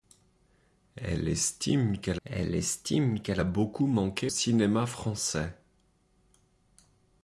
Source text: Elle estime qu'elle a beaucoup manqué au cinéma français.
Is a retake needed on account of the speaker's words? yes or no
yes